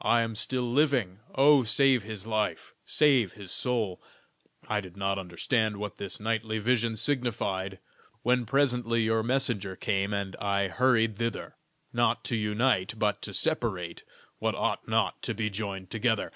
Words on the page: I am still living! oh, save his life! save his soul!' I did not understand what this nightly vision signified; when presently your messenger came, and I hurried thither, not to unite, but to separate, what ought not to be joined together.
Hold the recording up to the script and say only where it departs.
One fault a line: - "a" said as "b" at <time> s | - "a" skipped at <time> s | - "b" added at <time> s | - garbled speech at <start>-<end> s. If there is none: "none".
none